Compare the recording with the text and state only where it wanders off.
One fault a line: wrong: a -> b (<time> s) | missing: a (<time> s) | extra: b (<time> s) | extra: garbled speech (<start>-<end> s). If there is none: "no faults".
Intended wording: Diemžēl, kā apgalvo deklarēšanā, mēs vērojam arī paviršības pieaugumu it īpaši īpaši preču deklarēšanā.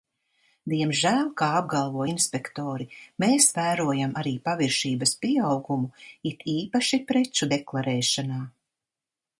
wrong: deklarēšanā -> inspektori (2.1 s)
missing: īpaši (7.0 s)